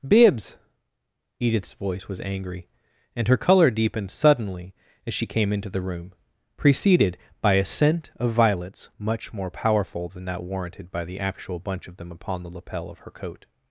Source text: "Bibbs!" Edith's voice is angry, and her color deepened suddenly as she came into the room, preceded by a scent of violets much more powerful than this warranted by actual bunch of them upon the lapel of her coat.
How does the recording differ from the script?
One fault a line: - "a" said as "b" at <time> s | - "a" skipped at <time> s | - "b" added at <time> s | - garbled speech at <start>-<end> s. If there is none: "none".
- "is" said as "was" at 2.1 s
- "this" said as "that" at 10.2 s
- "the" added at 11.1 s